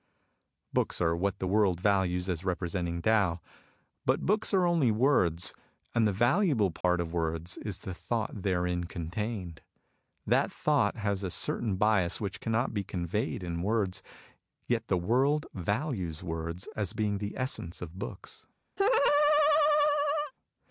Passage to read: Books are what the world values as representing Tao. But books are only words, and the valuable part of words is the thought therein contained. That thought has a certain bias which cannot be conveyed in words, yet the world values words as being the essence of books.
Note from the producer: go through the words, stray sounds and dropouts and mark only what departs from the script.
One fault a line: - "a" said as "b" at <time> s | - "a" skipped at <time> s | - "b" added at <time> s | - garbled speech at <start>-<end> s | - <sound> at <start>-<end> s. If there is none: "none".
- dropout at 6.8-6.8 s
- laugh at 18.8-20.3 s